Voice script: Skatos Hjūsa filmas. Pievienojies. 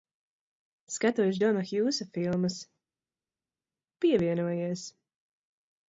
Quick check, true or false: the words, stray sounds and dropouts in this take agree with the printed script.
false